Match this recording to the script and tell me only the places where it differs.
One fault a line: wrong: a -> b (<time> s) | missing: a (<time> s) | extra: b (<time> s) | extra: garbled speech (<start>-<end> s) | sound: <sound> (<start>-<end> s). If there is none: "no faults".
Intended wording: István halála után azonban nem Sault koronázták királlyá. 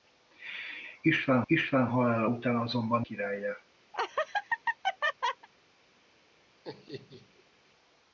extra: istván (1.5 s)
missing: nem Sault koronázták (3.1 s)
sound: laugh (3.9-5.5 s)
sound: laugh (6.6-7.4 s)